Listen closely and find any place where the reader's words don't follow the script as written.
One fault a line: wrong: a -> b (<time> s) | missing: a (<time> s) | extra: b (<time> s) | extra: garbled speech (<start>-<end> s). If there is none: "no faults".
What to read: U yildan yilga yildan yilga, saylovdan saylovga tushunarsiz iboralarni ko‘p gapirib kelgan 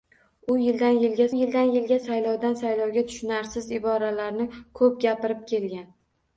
no faults